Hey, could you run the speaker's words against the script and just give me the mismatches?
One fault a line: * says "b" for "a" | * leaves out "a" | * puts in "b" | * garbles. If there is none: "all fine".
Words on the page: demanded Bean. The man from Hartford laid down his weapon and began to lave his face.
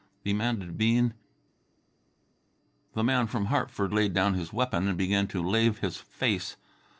all fine